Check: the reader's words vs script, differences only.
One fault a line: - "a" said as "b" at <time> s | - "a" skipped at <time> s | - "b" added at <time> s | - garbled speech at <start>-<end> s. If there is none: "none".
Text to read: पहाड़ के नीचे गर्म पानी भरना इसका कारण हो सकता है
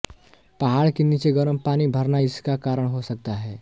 none